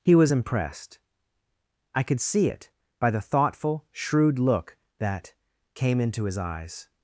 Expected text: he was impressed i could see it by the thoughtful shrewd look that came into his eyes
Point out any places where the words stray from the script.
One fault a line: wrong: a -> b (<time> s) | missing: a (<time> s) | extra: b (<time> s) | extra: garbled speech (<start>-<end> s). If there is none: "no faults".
no faults